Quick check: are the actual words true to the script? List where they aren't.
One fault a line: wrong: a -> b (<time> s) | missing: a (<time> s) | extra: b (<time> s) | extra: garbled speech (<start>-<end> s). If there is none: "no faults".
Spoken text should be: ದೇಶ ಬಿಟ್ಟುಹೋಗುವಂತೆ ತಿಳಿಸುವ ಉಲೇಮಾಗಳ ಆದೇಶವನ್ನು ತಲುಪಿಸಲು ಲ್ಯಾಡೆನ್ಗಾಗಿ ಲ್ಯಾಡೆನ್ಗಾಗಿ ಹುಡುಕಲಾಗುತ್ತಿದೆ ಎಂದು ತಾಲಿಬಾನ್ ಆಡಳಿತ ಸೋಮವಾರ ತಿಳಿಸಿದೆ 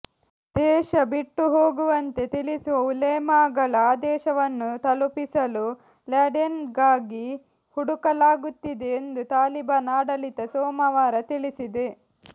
missing: ಲ್ಯಾಡೆನ್ಗಾಗಿ (7.3 s)